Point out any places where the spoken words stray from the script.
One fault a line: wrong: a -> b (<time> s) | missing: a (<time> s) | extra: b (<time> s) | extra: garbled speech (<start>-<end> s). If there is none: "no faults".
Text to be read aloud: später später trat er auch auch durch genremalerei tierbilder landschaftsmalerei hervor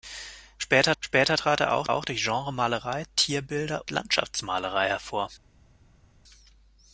no faults